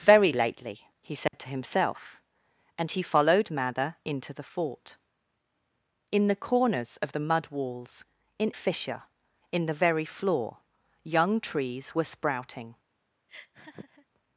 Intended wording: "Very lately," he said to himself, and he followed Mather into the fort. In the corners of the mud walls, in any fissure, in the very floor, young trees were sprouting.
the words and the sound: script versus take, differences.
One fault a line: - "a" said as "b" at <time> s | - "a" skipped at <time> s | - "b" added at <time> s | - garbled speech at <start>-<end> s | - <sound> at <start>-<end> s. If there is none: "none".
- dropout at 1.3-1.3 s
- "any" skipped at 8.5 s
- laugh at 13.3-14.1 s